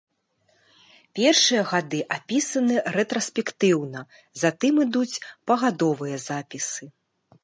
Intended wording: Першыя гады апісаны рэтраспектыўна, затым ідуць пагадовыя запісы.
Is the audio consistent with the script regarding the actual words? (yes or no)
yes